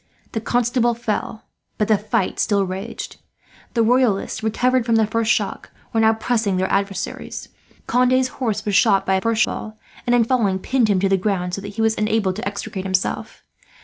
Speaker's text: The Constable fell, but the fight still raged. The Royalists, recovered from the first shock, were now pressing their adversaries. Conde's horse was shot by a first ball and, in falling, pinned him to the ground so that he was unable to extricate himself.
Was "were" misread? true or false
false